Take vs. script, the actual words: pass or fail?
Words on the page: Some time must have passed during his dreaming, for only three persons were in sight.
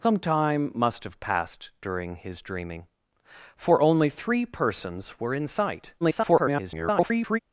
fail